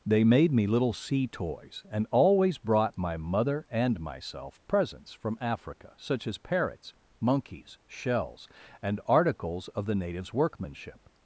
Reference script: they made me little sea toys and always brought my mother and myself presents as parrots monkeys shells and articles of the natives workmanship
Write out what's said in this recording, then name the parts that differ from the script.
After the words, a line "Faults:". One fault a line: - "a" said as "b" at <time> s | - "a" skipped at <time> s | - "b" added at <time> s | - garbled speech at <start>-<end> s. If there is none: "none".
they made me little sea toys and always brought my mother and myself presents from africa such as parrots monkeys shells and articles of the natives workmanship
Faults:
- "from africa such" added at 5.1 s